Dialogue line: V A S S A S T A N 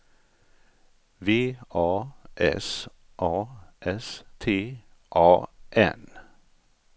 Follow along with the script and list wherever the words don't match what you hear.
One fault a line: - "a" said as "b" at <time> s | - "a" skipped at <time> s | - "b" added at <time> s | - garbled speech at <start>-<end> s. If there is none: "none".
- "S" skipped at 2.9 s